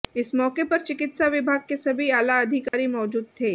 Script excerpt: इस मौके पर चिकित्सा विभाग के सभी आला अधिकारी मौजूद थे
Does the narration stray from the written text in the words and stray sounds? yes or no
yes